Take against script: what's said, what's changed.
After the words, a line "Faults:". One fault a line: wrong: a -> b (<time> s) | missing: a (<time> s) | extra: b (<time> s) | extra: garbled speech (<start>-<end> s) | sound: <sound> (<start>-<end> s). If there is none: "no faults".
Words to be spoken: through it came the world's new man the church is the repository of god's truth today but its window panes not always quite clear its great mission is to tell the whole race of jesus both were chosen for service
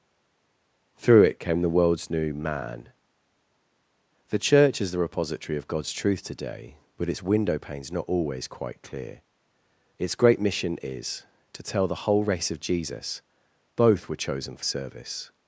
through it came the world's new man the church is the repository of god's truth today but its window panes not always quite clear its great mission is to tell the whole race of jesus both were chosen for service
Faults:
no faults